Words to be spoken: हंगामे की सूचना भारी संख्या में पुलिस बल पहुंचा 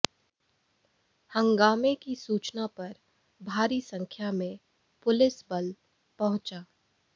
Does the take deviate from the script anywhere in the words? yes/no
yes